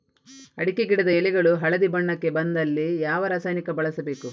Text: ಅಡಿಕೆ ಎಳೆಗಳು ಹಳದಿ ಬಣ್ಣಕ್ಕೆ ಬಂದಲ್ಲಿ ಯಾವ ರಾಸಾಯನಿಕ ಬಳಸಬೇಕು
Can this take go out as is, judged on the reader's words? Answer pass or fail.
fail